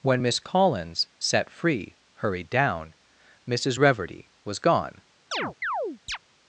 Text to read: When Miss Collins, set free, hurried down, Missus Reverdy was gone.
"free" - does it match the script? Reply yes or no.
yes